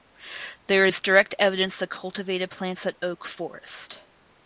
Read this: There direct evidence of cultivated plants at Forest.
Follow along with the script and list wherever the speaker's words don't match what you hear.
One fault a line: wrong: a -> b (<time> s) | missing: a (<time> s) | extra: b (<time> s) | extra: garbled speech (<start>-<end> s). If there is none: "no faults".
extra: is (0.9 s)
extra: Oak (3.0 s)